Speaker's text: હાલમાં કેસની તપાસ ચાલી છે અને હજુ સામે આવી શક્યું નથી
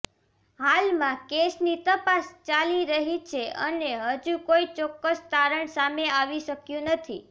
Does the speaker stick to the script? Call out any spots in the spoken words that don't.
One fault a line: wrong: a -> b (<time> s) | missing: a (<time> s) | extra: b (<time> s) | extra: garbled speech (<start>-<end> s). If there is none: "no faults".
extra: રહી (2.9 s)
extra: કોઈ ચોક્કસ તારણ (4.5 s)